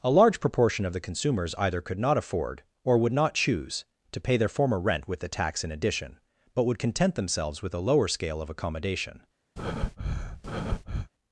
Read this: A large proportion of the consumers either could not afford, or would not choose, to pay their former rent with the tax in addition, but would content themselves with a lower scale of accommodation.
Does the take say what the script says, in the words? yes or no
yes